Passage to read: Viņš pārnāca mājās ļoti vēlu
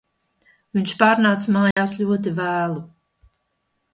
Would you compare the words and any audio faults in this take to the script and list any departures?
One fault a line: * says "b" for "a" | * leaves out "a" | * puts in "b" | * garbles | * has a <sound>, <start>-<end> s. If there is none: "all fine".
* has a dropout, 1.7-1.8 s